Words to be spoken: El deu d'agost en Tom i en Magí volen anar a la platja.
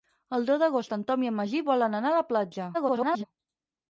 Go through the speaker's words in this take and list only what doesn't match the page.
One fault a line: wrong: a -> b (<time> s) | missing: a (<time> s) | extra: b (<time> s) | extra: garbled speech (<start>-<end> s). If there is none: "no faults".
extra: garbled speech (2.7-3.2 s)